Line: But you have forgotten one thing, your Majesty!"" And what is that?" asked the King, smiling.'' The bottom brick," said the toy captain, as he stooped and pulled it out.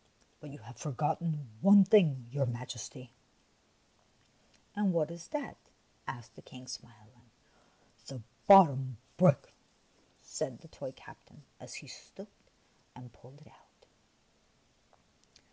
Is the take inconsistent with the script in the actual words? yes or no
no